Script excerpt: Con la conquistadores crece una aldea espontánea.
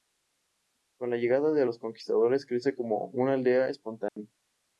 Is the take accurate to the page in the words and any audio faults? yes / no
no